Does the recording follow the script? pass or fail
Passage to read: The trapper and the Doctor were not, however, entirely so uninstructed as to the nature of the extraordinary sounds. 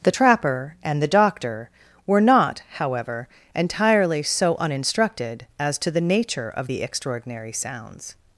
pass